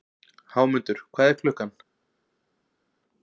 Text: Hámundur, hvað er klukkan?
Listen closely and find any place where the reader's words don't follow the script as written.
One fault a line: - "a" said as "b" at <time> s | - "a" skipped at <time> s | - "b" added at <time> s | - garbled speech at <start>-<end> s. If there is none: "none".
none